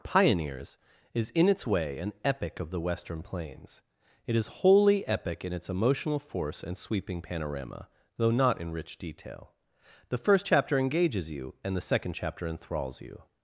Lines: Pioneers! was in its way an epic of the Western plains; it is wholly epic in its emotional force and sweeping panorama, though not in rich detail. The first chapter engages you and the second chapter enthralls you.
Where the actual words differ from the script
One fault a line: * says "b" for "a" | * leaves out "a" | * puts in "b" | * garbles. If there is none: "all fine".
* says "is" for "was"